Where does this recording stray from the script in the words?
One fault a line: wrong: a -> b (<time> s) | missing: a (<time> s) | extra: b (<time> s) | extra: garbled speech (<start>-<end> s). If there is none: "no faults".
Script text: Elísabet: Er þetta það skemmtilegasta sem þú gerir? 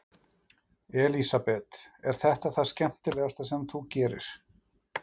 no faults